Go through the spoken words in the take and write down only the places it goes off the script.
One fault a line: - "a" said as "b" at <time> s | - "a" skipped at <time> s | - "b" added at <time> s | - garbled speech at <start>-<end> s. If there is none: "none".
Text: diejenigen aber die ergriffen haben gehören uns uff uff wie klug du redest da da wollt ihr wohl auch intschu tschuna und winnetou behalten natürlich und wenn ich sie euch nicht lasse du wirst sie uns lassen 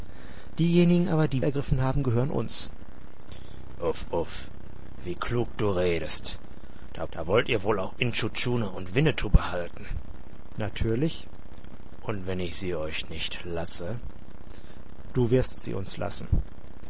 none